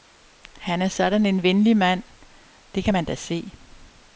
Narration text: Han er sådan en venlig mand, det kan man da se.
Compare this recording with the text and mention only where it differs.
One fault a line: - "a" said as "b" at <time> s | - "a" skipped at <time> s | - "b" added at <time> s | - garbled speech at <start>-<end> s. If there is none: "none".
none